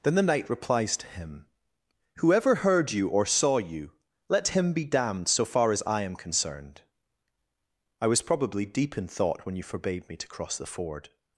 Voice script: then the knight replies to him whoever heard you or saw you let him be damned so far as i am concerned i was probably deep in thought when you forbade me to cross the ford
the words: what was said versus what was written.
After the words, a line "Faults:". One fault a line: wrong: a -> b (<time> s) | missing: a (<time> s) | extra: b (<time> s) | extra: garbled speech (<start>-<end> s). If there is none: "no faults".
then the knight replies to him whoever heard you or saw you let him be damned so far as i am concerned i was probably deep in thought when you forbade me to cross the ford
Faults:
no faults